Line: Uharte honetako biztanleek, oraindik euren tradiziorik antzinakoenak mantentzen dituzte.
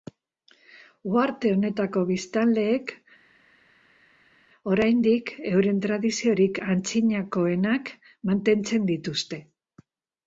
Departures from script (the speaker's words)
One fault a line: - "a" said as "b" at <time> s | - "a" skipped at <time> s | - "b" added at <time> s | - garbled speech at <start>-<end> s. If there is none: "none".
none